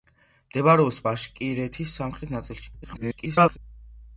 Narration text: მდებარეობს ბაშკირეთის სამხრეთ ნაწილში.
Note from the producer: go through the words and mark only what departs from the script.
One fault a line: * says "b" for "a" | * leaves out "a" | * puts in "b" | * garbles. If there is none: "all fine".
* garbles